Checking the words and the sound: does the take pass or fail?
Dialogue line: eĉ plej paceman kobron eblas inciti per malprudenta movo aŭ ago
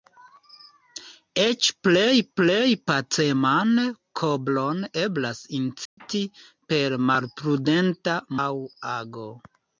fail